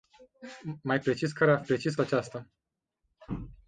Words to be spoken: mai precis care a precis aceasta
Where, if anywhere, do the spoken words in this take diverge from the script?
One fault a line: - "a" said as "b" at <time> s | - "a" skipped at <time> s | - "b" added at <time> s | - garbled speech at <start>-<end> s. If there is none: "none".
none